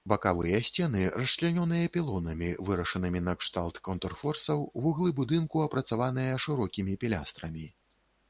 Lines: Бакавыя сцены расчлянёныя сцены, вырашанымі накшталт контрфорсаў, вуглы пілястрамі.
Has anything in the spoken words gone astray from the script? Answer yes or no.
yes